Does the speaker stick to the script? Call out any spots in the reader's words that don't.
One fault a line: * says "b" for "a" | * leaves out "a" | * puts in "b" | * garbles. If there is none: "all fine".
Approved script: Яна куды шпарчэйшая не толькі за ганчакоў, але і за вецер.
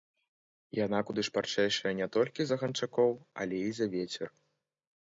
all fine